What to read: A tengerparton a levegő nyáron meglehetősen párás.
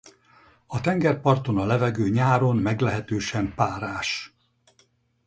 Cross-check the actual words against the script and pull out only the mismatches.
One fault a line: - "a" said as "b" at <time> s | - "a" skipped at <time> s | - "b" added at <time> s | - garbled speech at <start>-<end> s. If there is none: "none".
none